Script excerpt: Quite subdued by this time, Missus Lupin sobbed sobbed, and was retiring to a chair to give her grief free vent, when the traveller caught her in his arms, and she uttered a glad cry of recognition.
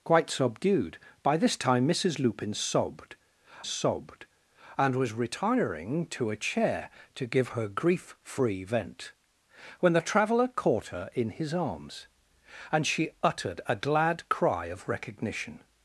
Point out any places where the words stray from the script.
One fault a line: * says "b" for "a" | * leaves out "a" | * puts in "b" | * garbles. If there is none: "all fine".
all fine